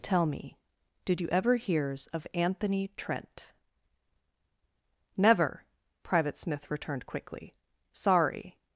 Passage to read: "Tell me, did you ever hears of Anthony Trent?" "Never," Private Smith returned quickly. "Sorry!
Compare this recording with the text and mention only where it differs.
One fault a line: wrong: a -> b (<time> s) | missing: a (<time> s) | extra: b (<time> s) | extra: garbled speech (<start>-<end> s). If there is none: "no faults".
no faults